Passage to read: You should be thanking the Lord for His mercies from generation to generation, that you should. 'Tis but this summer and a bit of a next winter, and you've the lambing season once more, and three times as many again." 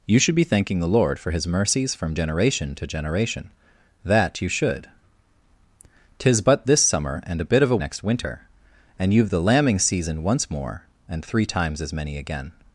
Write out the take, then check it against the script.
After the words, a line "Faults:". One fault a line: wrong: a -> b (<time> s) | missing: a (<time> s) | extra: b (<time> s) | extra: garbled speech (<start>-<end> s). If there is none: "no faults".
You should be thanking the Lord for His mercies from generation to generation, that you should. 'Tis but this summer and a bit of a next winter, and you've the lambing season once more, and three times as many again."
Faults:
no faults